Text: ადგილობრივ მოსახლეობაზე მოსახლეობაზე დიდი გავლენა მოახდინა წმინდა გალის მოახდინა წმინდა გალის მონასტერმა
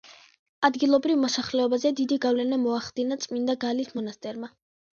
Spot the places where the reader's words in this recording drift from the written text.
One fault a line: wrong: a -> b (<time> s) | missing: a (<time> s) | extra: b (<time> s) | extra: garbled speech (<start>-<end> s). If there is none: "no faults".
missing: მოსახლეობაზე (1.9 s)
missing: მოახდინა წმინდა გალის (4.0 s)